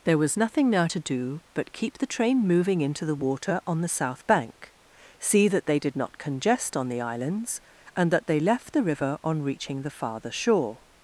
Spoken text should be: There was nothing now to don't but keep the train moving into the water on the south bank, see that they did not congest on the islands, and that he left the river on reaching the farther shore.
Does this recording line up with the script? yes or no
no